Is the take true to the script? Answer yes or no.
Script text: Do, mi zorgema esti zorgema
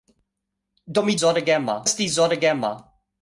yes